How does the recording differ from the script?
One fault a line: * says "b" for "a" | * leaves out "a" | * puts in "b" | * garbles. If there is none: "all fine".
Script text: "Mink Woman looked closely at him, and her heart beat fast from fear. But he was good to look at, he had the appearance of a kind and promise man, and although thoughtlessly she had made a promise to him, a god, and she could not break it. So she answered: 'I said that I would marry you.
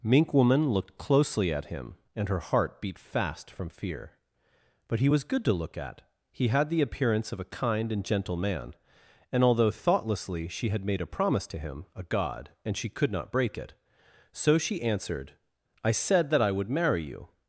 * says "gentle" for "promise"